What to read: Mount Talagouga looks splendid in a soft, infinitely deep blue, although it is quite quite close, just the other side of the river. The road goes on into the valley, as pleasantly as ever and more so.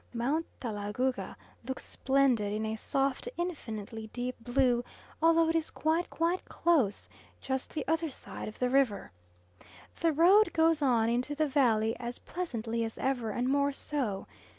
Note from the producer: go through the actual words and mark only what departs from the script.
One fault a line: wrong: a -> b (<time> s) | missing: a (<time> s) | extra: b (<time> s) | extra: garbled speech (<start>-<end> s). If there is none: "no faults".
no faults